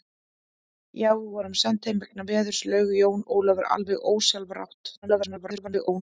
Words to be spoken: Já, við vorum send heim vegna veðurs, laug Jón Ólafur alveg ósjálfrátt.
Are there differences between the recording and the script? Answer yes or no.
yes